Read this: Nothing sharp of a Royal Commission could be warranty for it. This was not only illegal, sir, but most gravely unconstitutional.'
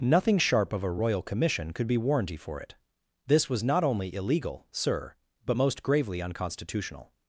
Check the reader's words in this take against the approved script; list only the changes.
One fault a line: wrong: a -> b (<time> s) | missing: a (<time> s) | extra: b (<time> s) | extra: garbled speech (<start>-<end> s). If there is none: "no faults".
no faults